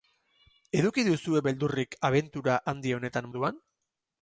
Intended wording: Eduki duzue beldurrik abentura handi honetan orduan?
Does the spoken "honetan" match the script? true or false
true